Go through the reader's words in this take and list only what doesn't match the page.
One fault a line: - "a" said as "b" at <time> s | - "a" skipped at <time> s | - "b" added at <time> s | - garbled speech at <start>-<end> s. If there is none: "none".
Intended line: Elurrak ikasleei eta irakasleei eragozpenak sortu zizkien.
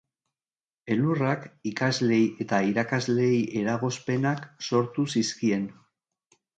none